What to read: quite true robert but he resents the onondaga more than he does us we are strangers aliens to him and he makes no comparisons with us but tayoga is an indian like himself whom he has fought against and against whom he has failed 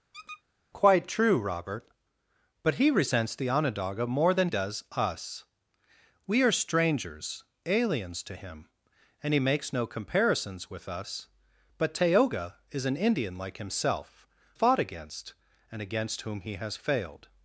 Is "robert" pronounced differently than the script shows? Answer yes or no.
no